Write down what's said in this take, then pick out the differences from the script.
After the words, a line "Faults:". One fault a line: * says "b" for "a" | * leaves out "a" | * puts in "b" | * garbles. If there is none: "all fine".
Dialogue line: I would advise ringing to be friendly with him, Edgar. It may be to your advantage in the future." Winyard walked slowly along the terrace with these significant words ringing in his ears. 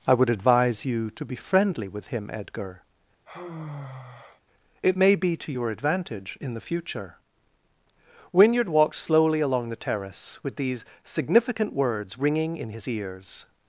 I would advise you to be friendly with him, Edgar. It may be to your advantage in the future." Winyard walked slowly along the terrace with these significant words ringing in his ears.
Faults:
* says "you" for "ringing"